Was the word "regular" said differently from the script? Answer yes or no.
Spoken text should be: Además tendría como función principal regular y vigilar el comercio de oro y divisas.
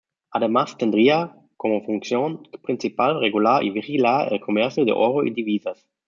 no